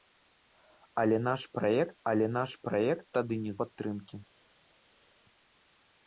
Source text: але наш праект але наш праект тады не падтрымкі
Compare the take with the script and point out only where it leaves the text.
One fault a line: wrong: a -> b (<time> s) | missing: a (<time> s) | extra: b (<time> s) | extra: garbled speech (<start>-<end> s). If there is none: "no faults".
no faults